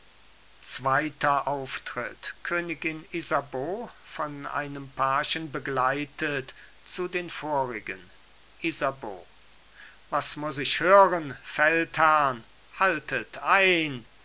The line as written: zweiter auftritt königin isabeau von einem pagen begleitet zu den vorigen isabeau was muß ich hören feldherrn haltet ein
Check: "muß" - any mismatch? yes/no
no